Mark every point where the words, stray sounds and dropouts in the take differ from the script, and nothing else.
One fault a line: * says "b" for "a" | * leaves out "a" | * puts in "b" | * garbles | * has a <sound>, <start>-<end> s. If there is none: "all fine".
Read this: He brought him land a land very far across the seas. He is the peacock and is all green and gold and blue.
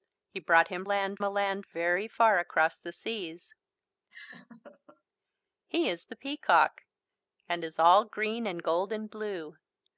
* has a laugh, 4.1-5.0 s